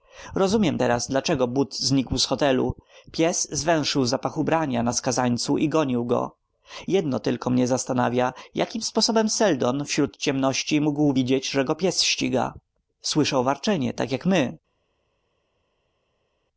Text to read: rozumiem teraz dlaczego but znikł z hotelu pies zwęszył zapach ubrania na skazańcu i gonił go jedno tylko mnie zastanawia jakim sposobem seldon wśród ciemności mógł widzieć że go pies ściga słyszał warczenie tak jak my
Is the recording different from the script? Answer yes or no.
no